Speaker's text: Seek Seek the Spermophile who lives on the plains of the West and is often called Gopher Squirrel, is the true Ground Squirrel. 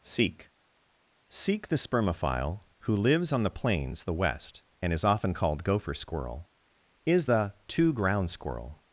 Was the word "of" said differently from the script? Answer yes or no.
yes